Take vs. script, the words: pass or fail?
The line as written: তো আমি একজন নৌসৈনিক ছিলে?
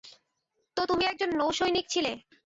fail